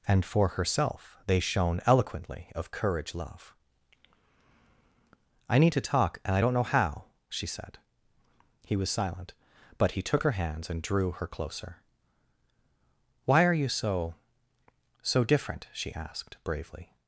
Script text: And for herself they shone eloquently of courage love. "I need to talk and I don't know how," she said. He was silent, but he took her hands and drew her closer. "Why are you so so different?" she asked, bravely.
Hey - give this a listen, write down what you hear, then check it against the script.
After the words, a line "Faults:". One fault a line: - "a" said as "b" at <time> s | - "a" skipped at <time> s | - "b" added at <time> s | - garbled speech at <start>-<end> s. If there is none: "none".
And for herself they shone eloquently of courage love. "I need to talk and I don't know how," she said. He was silent, but he took her hands and drew her closer. "Why are you so so different?" she asked, bravely.
Faults:
none